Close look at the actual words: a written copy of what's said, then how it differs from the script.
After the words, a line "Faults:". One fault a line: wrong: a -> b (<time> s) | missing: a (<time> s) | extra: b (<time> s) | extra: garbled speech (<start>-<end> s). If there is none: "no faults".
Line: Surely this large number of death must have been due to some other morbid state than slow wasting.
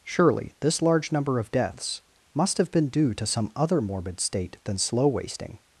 Surely this large number of deaths must have been due to some other morbid state than slow wasting.
Faults:
wrong: death -> deaths (1.5 s)